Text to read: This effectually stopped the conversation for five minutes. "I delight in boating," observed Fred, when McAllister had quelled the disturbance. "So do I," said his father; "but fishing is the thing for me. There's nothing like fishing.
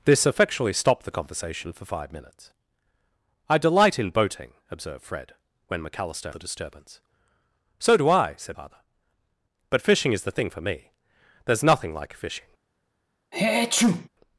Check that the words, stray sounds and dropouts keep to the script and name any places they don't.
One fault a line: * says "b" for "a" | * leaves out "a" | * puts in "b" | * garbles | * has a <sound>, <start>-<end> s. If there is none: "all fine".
* leaves out "had quelled"
* leaves out "his"
* has a sneeze, 13.3-14.1 s